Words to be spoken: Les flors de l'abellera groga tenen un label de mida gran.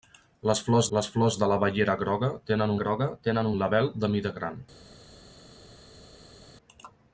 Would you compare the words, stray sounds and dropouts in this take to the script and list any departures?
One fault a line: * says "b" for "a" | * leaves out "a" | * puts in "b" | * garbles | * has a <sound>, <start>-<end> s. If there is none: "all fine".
* puts in "les flors"
* puts in "groga tenen"